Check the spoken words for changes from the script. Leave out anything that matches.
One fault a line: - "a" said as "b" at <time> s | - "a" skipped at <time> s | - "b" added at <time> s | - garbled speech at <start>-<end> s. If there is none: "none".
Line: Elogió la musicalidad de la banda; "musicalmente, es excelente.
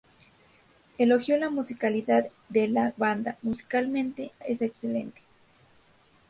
none